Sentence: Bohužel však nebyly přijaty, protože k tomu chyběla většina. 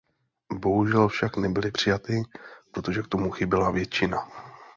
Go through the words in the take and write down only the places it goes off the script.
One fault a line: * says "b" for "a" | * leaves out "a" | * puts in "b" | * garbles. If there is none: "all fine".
all fine